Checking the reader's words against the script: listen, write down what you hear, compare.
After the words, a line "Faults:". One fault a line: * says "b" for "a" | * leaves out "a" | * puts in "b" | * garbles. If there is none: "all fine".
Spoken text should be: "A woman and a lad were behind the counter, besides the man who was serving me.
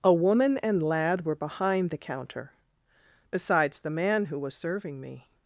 "A woman and lad were behind the counter, besides the man who was serving me.
Faults:
* leaves out "a"